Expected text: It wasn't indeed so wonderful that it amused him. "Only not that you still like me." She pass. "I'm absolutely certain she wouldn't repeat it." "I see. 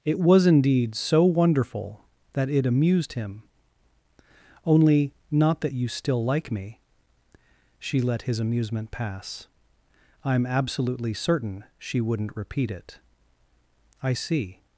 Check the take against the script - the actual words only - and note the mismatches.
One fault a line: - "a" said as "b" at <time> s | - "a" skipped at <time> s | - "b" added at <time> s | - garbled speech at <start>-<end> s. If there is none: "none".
- "wasn't" said as "was" at 0.2 s
- "let his amusement" added at 8.0 s